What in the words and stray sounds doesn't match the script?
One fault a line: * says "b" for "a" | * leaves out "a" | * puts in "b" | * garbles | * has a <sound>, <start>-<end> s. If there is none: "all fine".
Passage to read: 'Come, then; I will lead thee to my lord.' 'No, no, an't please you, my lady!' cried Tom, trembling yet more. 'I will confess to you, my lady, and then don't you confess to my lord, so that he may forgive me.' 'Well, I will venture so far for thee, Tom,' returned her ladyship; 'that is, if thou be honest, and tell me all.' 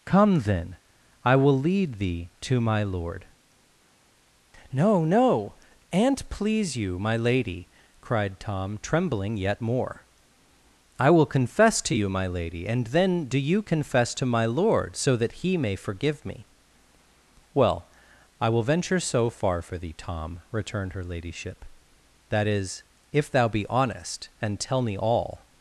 * says "do" for "don't"